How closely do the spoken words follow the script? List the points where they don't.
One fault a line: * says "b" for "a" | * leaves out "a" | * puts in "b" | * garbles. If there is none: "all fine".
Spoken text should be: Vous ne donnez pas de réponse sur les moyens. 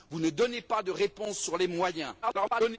* garbles